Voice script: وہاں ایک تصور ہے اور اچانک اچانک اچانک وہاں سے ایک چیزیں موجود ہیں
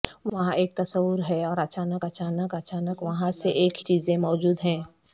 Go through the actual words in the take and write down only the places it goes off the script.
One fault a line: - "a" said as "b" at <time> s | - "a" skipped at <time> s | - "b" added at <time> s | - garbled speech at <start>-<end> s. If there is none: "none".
none